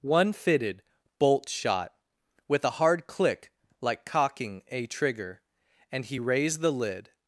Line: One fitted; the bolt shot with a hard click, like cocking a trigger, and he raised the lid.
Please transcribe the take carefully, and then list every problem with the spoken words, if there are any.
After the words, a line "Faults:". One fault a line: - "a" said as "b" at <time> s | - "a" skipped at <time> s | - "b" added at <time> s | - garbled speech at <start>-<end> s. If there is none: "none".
One fitted; bolt shot with a hard click, like cocking a trigger, and he raised the lid.
Faults:
- "the" skipped at 0.8 s